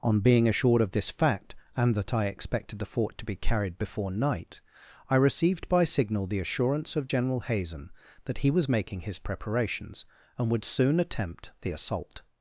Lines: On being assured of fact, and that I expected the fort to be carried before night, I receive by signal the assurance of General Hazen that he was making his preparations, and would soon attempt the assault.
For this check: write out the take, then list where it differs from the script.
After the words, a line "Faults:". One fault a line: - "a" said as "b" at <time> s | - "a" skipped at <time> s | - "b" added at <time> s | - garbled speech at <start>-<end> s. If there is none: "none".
On being assured of this fact, and that I expected the fort to be carried before night, I received by signal the assurance of General Hazen that he was making his preparations, and would soon attempt the assault.
Faults:
- "this" added at 0.9 s
- "receive" said as "received" at 5.2 s